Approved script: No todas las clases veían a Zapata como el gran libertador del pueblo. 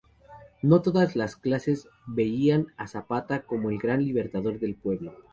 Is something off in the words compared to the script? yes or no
no